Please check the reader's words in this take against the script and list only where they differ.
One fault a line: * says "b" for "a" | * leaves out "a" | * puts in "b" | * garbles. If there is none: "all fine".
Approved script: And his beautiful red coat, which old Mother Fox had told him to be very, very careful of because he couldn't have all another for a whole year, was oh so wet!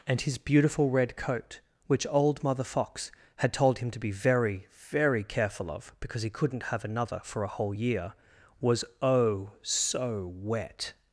* leaves out "all"